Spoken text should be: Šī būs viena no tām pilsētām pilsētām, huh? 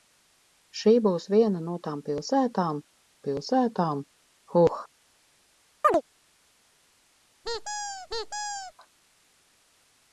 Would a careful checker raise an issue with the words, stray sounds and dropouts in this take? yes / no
yes